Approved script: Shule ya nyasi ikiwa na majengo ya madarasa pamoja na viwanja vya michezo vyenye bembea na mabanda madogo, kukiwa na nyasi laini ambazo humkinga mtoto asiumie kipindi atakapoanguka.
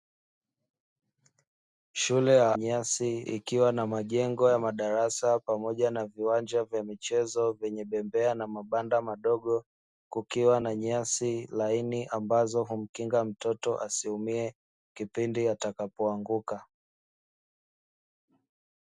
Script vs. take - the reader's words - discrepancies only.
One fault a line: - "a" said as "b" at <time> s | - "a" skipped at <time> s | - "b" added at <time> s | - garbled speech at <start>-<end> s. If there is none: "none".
none